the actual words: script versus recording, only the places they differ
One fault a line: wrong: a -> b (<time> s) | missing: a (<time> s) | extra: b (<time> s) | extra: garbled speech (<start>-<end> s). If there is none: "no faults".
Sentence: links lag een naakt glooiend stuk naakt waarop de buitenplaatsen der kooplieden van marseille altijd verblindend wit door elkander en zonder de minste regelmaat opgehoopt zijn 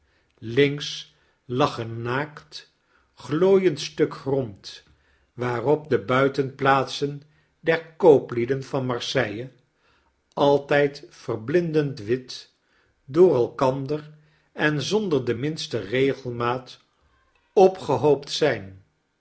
wrong: naakt -> grond (4.2 s)